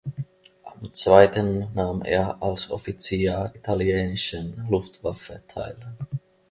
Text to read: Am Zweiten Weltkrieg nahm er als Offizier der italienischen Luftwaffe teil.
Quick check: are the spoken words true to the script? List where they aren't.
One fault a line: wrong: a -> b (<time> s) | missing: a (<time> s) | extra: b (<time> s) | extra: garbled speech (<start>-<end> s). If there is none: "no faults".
missing: Weltkrieg (1.7 s)
missing: der (3.5 s)